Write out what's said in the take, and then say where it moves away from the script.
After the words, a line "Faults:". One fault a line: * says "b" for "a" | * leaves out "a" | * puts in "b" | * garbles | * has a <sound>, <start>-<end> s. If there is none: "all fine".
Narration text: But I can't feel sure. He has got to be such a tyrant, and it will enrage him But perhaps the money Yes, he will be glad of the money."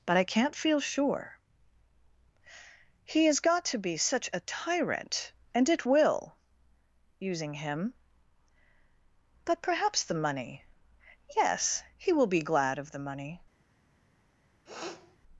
But I can't feel sure. He has got to be such a tyrant, and it will using him But perhaps the money Yes, he will be glad of the money."
Faults:
* says "using" for "enrage"
* has a sniff, 14.7-15.2 s